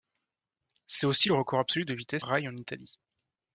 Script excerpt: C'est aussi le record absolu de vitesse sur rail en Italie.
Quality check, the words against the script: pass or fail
fail